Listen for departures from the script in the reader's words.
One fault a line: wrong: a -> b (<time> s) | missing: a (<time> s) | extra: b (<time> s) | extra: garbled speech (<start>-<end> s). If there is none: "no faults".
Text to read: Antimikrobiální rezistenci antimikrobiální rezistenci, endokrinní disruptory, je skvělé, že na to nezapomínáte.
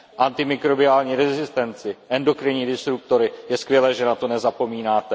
missing: antimikrobiální rezistenci (2.0 s)